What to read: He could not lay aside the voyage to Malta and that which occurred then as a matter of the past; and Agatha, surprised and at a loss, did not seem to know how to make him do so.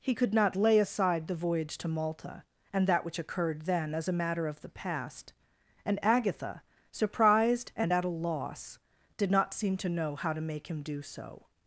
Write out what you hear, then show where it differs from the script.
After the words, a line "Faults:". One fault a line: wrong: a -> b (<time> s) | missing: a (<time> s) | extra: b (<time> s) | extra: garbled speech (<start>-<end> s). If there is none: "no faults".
He could not lay aside the voyage to Malta and that which occurred then as a matter of the past; and Agatha, surprised and at a loss, did not seem to know how to make him do so.
Faults:
no faults